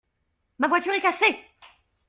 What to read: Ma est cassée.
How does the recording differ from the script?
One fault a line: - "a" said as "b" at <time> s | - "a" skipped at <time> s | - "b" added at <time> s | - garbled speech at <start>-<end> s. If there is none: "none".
- "voiture" added at 0.7 s